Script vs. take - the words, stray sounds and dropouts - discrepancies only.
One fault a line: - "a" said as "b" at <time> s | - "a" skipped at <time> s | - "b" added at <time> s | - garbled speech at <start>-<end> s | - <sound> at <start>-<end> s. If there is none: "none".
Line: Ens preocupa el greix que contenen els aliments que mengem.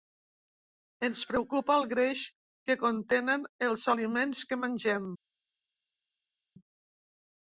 none